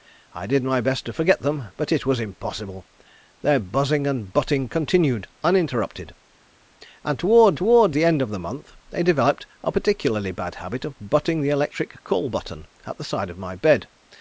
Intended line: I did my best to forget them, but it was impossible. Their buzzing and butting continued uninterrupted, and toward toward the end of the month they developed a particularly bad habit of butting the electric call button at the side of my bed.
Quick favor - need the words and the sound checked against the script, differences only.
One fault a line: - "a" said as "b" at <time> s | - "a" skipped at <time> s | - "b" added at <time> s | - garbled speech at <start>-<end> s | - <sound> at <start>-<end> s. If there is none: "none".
none